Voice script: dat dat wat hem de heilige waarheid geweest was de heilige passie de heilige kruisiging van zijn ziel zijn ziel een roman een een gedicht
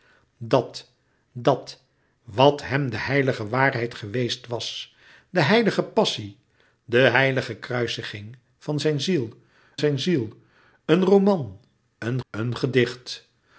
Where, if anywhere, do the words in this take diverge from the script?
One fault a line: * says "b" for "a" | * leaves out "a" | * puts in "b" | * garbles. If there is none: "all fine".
all fine